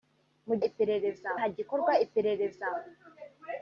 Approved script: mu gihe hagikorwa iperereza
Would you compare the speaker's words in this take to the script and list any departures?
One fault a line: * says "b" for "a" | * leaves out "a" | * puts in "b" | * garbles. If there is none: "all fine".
* says "iperereza" for "gihe"